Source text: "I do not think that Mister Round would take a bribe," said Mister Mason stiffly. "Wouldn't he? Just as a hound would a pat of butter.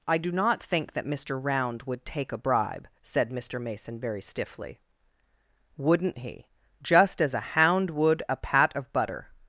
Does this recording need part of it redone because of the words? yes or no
yes